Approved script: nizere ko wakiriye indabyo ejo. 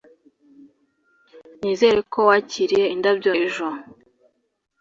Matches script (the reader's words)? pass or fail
pass